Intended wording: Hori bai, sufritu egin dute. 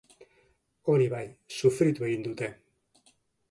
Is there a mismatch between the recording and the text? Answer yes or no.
no